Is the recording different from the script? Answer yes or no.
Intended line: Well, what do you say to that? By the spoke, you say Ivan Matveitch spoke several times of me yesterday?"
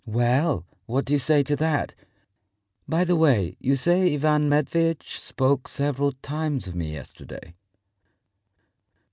yes